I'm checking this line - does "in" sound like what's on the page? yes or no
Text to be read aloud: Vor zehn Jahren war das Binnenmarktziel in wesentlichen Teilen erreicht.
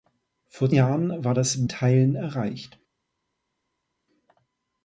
no